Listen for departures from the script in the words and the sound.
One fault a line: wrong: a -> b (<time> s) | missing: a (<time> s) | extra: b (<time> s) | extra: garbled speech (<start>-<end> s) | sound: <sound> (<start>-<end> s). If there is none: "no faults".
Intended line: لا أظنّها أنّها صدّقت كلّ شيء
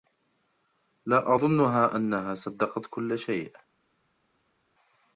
no faults